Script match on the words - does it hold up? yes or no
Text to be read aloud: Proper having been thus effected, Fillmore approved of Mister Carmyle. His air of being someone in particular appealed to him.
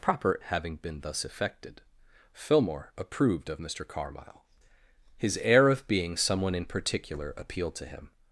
yes